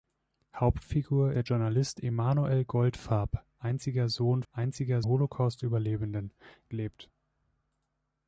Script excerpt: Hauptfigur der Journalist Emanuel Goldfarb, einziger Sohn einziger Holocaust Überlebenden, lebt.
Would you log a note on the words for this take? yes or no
no